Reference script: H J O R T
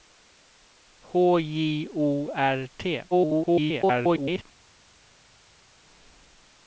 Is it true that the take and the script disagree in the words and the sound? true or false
true